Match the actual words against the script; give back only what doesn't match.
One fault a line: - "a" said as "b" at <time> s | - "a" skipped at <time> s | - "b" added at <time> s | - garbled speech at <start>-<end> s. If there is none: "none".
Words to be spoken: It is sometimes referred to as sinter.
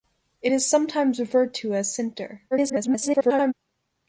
- garbled speech at 2.5-3.5 s